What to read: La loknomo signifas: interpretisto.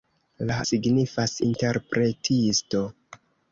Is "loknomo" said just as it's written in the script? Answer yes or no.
no